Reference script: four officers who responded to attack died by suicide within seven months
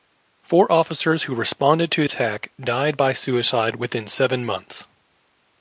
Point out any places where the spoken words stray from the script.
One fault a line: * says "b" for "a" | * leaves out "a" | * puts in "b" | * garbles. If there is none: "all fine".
all fine